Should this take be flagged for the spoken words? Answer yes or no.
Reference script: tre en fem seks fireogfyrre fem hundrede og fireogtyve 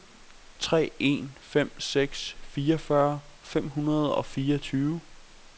no